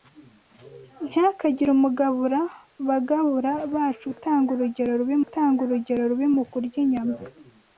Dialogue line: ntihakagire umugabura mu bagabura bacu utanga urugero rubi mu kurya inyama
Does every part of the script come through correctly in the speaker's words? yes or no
no